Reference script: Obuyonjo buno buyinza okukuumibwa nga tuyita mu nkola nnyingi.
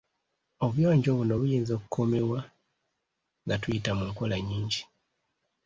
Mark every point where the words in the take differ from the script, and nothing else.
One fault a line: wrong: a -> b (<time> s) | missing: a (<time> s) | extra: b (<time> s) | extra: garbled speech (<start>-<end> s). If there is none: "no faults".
no faults